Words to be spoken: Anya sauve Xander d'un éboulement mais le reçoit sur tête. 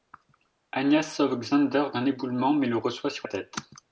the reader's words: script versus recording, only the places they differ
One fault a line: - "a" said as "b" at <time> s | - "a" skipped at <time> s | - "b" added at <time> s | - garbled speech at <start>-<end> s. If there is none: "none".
none